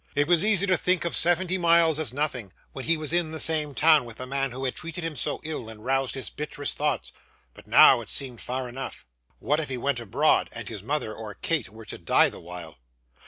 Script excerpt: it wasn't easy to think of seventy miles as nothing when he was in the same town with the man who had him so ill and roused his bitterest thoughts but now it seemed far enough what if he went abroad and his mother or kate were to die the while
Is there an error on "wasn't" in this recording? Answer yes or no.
yes